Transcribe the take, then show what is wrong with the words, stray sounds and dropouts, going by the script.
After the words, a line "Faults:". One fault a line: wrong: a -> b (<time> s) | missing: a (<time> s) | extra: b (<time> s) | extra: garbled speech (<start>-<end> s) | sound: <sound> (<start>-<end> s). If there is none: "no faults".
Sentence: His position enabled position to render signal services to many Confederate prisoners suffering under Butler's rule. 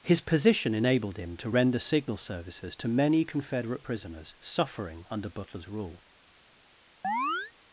His position enabled him to render signal services to many Confederate prisoners suffering under Butler's rule.
Faults:
wrong: position -> him (1.2 s)
sound: chirp (7.0-7.5 s)